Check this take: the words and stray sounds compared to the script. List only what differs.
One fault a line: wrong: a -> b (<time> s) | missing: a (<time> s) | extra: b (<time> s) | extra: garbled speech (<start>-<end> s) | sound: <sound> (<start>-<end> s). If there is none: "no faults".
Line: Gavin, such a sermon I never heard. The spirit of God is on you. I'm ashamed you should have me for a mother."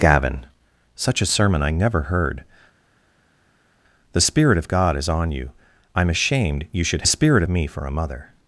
wrong: have -> spirit (7.1 s)